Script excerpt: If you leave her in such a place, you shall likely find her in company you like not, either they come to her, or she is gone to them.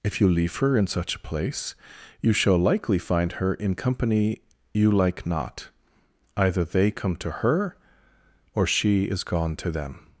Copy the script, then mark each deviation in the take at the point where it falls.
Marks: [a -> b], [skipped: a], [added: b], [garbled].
If you leave her in such a place, you shall likely find her in company you like not, either they come to her, or she is gone to them.